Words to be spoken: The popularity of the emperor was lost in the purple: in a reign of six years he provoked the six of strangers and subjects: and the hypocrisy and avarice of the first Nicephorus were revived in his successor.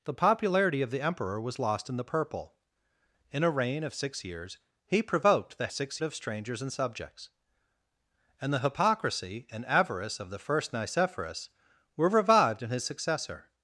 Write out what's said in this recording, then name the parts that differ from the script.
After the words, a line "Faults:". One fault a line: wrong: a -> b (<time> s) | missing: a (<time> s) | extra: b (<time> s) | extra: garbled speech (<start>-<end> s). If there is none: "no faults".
The popularity of the emperor was lost in the purple: in a reign of six years he provoked the six of strangers and subjects: and the hypocrisy and avarice of the first Nicephorus were revived in his successor.
Faults:
no faults